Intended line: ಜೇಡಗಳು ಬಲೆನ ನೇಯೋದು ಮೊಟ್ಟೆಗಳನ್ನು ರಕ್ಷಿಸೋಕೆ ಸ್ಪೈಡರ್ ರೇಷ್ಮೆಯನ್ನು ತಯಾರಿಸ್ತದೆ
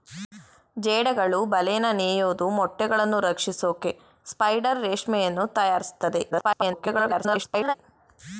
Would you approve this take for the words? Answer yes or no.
no